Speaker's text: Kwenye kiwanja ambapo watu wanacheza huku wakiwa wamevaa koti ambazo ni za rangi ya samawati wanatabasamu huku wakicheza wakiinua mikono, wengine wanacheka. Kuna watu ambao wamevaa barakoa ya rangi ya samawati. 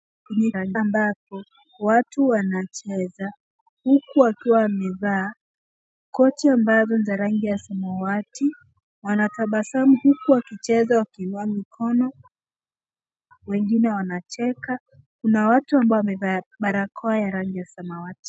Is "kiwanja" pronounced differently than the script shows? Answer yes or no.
yes